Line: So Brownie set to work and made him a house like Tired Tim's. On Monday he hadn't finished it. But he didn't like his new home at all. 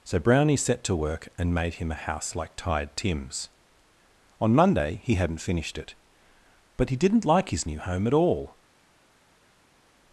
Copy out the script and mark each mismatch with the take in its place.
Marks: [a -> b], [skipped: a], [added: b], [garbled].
So Brownie set to work and made him a house like Tired Tim's. On Monday he hadn't finished it. But he didn't like his new home at all.